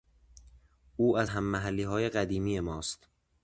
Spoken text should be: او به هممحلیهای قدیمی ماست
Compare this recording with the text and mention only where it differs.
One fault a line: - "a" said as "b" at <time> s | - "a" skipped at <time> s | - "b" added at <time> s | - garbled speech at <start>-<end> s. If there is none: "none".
- "به" said as "از" at 1.2 s